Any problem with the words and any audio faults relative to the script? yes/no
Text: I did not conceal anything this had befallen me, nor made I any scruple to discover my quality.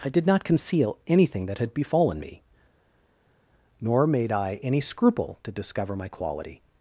yes